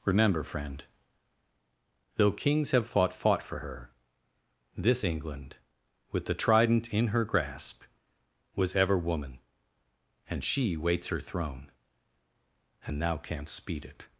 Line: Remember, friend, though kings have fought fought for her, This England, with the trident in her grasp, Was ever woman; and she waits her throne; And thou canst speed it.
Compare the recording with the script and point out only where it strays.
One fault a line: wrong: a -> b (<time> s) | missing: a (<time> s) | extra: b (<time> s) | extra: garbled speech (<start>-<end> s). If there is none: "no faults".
no faults